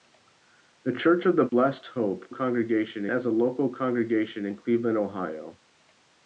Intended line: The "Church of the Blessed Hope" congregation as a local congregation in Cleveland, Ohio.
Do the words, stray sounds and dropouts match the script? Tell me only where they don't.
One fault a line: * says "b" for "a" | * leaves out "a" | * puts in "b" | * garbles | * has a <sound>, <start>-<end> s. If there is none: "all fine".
* has a dropout, 1.5-1.5 s